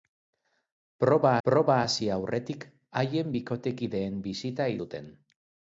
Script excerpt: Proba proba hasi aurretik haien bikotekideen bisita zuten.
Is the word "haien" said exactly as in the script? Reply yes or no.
yes